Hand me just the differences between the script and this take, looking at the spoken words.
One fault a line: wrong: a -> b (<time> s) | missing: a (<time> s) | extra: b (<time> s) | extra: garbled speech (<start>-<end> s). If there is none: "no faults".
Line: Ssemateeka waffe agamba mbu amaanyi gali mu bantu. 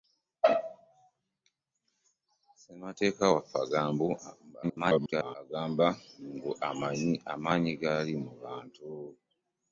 extra: garbled speech (4.6-5.4 s)